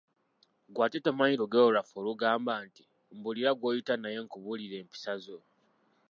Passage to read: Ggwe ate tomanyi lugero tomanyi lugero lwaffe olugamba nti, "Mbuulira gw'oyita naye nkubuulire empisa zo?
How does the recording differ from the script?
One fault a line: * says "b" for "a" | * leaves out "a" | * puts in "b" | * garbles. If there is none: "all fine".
* leaves out "tomanyi lugero"